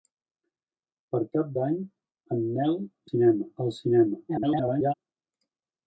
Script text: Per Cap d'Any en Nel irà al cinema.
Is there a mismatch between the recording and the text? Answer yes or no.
yes